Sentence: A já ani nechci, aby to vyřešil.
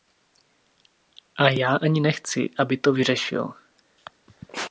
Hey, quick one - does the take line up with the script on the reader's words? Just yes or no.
yes